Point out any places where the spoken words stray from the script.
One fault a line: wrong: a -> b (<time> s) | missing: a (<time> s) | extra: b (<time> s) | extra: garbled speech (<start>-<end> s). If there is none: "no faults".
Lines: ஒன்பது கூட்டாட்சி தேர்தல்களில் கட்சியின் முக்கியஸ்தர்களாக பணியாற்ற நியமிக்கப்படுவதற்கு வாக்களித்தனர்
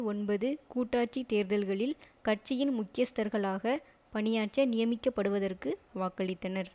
no faults